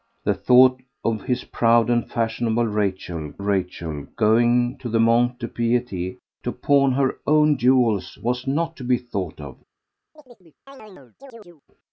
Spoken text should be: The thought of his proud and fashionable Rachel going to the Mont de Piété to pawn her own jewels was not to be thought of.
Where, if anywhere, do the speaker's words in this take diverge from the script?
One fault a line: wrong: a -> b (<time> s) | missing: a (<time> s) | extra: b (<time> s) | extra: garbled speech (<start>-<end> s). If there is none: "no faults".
extra: Rachel (3.4 s)